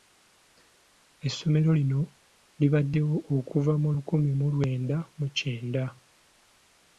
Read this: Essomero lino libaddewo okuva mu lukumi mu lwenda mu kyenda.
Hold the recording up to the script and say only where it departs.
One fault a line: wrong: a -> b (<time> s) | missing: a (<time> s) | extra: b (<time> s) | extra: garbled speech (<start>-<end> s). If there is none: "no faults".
no faults